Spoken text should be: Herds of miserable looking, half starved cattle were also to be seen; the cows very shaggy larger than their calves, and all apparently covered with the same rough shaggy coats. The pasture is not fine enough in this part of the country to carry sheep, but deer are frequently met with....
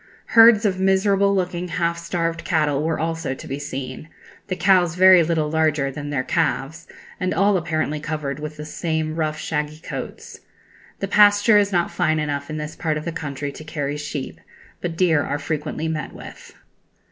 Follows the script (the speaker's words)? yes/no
no